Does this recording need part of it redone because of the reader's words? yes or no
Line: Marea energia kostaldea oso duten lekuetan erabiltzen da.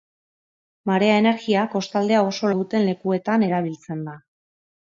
no